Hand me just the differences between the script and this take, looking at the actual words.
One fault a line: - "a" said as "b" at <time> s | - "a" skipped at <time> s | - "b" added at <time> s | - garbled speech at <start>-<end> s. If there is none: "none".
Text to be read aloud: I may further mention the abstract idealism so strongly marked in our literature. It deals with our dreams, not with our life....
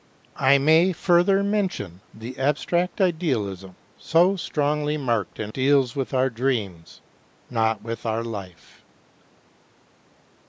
- "our literature It" skipped at 5.5 s